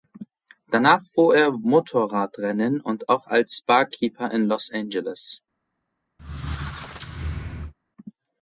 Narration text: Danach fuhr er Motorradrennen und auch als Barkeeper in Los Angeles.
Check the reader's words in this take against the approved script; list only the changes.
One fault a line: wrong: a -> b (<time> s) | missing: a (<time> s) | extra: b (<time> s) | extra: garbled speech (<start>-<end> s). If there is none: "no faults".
no faults